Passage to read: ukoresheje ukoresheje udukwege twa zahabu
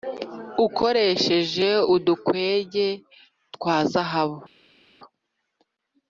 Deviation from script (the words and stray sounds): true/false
true